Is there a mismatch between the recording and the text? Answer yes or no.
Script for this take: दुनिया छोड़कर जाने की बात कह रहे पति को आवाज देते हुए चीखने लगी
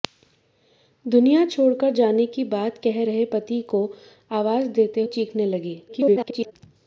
yes